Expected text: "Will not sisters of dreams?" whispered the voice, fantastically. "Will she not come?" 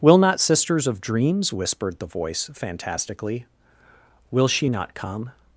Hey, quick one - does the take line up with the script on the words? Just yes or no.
yes